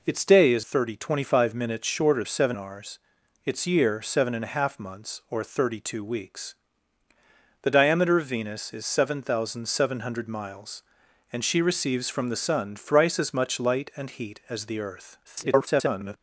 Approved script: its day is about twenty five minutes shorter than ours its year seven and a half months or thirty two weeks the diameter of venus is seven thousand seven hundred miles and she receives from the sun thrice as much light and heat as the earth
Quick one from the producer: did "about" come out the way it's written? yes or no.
no